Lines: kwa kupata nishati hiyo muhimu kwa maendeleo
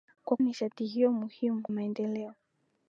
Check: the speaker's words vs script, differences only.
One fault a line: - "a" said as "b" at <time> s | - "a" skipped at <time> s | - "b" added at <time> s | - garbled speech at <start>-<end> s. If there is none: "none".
- "kupata" skipped at 0.4 s
- "kwa" skipped at 1.6 s